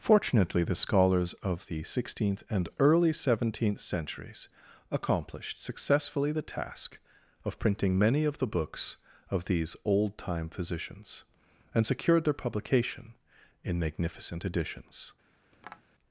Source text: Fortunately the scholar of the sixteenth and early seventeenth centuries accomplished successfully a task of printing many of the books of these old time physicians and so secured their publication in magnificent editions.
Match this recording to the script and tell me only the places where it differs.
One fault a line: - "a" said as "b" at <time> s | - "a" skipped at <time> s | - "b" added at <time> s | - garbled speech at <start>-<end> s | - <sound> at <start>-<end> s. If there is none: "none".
- "scholar" said as "scholars" at 0.7 s
- "a" said as "the" at 6.3 s
- "so" skipped at 11.8 s
- tap at 15.5-15.8 s